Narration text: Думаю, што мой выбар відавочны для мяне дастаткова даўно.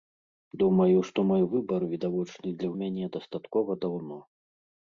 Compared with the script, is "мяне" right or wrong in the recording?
right